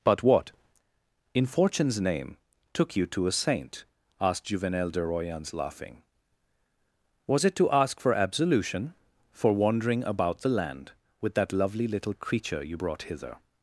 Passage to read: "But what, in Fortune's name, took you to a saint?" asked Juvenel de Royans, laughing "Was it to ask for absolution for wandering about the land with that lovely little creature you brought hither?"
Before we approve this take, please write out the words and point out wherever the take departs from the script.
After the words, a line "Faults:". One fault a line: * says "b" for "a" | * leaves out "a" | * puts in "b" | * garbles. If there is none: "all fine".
"But what, in Fortune's name, took you to a saint?" asked Juvenel de Royans, laughing "Was it to ask for absolution for wandering about the land with that lovely little creature you brought hither?"
Faults:
all fine